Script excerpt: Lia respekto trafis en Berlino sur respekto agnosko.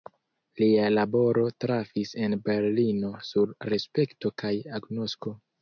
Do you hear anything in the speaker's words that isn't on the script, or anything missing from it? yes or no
yes